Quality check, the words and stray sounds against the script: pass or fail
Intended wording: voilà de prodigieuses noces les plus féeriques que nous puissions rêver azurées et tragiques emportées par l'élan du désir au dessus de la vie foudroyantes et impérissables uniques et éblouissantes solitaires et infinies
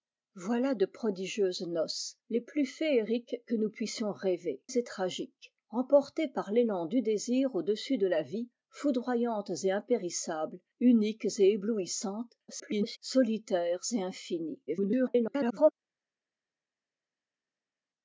fail